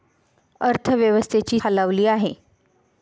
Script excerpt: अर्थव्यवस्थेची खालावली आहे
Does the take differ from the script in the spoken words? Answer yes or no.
no